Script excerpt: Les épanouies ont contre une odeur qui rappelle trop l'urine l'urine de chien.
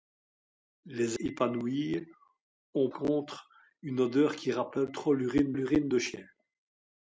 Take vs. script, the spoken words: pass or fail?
pass